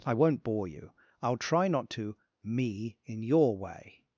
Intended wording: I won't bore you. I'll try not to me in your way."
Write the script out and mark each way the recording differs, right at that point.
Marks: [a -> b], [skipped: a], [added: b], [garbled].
I won't bore you. I'll try not to me in your way."